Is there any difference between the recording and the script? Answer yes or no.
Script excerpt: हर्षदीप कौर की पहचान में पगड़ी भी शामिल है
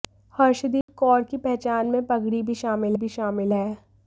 yes